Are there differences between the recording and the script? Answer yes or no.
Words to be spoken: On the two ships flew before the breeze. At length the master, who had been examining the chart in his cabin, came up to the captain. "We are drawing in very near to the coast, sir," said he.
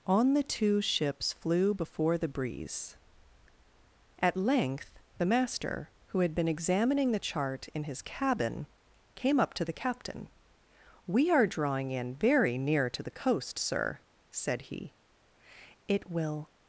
yes